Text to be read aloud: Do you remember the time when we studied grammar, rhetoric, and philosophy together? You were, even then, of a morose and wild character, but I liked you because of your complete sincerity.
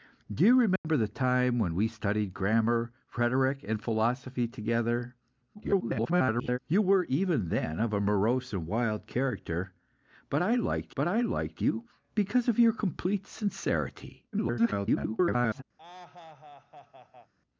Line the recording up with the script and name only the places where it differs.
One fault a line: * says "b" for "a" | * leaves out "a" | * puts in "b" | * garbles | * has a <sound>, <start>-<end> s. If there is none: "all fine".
* has a dropout, 0.8-0.8 s
* garbles
* puts in "but I liked"
* garbles
* has a laugh, 15.8-17.3 s